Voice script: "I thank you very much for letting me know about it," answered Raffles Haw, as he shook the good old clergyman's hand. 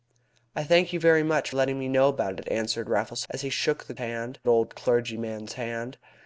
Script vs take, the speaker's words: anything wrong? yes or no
yes